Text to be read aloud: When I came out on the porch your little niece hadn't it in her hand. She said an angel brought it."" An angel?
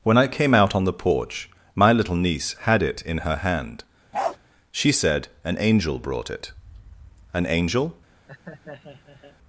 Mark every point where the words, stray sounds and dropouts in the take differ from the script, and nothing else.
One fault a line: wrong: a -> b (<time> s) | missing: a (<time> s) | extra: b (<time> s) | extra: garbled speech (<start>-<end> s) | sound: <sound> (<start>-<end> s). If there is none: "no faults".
wrong: your -> my (1.8 s)
wrong: hadn't -> had (2.6 s)
sound: bark (4.1-4.4 s)
sound: laugh (8.3-9.4 s)